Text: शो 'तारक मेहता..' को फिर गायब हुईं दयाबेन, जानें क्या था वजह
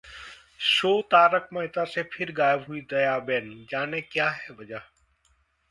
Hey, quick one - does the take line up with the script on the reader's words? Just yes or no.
no